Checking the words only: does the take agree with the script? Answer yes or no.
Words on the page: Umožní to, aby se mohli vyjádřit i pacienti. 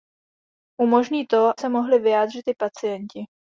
no